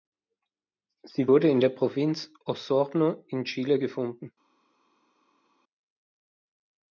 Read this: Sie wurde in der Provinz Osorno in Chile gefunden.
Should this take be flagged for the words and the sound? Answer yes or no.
no